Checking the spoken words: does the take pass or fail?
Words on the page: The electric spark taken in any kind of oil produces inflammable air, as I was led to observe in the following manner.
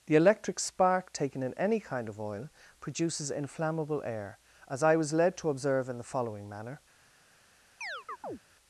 pass